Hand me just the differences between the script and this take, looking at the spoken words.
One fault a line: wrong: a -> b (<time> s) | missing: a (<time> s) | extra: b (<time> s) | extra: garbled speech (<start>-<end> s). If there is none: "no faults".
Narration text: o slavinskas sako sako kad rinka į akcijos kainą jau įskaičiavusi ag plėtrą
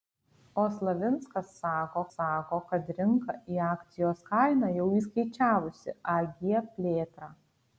no faults